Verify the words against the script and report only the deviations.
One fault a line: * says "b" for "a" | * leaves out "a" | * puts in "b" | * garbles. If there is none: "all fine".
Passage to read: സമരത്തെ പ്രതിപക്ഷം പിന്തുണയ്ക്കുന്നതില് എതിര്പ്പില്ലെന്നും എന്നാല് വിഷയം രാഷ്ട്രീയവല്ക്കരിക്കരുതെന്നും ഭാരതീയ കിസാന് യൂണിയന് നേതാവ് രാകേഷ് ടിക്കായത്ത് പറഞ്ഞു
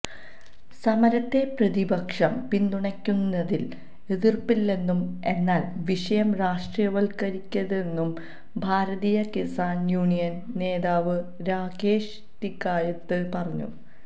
all fine